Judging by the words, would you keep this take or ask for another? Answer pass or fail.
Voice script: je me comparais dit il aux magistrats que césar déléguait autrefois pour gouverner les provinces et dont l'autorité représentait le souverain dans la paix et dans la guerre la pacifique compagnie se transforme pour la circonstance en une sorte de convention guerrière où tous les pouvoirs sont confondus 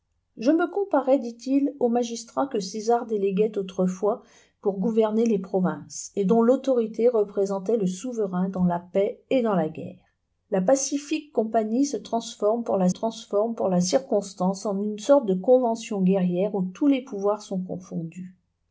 fail